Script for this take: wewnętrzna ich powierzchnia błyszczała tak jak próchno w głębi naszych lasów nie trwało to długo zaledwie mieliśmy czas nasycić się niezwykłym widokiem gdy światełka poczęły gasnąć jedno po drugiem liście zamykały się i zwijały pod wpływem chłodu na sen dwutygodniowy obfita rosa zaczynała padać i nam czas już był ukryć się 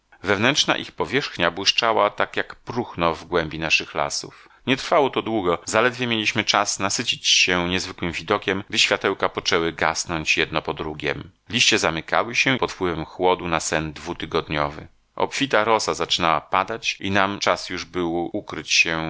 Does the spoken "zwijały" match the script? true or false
false